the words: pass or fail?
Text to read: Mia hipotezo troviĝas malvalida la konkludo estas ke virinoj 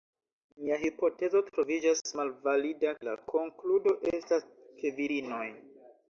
pass